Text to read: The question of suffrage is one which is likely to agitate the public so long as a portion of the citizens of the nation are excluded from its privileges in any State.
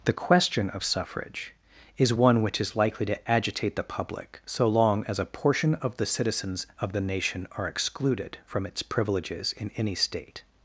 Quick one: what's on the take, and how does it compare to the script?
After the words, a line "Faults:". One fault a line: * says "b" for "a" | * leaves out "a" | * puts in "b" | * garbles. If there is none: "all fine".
The question of suffrage is one which is likely to agitate the public so long as a portion of the citizens of the nation are excluded from its privileges in any State.
Faults:
all fine